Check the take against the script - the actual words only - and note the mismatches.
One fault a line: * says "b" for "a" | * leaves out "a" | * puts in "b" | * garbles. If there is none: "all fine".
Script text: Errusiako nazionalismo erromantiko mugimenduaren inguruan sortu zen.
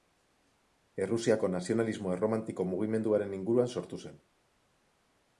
all fine